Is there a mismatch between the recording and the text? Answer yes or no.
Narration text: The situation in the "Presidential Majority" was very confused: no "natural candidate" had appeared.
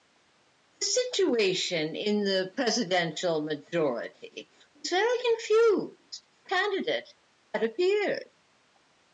yes